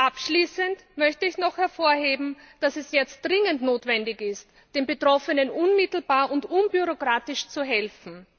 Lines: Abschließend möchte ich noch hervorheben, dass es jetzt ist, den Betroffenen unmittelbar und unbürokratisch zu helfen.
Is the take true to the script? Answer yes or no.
no